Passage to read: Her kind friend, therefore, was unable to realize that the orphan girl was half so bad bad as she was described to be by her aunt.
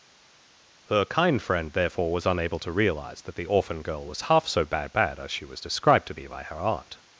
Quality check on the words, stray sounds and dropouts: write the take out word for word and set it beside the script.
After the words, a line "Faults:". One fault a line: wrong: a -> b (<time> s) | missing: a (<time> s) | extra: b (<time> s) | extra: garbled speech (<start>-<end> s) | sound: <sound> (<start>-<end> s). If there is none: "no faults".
Her kind friend, therefore, was unable to realize that the orphan girl was half so bad bad as she was described to be by her aunt.
Faults:
no faults